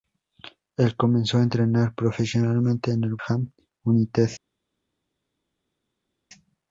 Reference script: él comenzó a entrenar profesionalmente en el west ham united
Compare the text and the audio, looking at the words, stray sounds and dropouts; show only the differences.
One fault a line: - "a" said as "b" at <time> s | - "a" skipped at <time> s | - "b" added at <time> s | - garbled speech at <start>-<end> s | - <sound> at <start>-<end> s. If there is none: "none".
- "west" skipped at 3.1 s